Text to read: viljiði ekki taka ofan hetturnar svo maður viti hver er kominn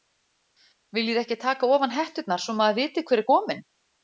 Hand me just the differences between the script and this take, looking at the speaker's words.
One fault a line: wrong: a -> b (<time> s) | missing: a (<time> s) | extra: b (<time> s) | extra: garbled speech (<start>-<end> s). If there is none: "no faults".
no faults